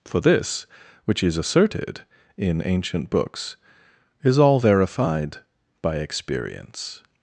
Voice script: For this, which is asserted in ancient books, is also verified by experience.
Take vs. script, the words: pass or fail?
fail